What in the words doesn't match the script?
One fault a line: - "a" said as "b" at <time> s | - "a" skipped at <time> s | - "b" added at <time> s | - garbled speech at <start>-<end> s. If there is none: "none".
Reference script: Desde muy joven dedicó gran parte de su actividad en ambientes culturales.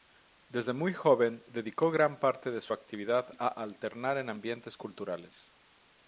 - "a alternar" added at 3.4 s